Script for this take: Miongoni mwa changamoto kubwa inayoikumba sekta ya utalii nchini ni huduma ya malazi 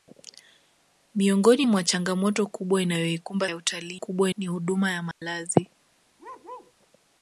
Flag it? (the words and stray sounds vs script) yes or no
yes